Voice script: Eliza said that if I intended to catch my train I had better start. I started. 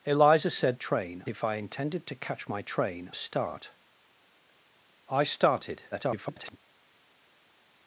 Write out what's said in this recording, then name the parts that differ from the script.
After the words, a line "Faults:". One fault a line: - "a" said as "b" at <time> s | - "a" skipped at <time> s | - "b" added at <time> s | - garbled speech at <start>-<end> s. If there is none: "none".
Eliza said train if I intended to catch my train start. I started. [garbled]
Faults:
- "that" said as "train" at 0.7 s
- "I had better" skipped at 3.1 s
- garbled speech at 5.9-6.6 s